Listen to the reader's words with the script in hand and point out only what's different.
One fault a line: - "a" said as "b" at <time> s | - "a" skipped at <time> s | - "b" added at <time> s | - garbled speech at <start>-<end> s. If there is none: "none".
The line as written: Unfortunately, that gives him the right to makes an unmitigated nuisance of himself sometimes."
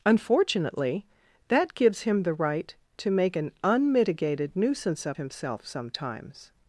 - "makes" said as "make" at 3.1 s